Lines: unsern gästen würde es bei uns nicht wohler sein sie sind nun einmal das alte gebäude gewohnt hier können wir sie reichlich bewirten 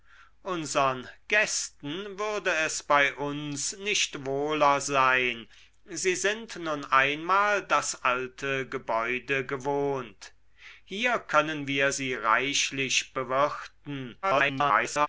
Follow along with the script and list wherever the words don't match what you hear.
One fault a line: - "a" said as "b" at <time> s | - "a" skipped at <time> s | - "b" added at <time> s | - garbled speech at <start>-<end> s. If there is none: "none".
- garbled speech at 14.2-15.1 s